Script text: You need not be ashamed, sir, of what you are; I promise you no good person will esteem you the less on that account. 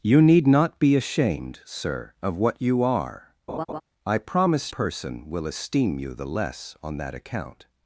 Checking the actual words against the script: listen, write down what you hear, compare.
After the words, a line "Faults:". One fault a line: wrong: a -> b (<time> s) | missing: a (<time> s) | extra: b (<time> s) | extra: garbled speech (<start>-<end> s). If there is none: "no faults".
You need not be ashamed, sir, of what you are; I promise person will esteem you the less on that account.
Faults:
missing: you no good (4.7 s)